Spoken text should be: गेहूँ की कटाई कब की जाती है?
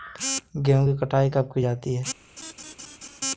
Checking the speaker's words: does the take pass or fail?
pass